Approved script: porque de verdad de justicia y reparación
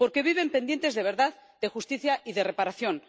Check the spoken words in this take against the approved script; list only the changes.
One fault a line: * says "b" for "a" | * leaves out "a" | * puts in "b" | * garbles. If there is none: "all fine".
* puts in "viven pendientes"
* puts in "de"